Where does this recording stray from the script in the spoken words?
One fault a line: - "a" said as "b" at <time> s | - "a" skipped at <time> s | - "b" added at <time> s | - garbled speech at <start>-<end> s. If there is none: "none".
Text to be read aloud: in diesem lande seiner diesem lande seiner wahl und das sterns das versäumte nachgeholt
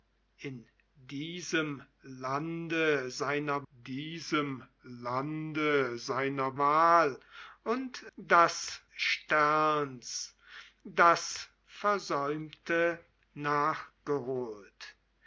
none